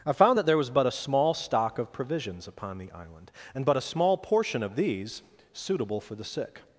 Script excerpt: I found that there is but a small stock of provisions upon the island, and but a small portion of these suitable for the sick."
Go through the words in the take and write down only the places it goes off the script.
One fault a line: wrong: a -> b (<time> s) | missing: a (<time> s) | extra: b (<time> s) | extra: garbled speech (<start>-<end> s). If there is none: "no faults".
wrong: is -> was (0.6 s)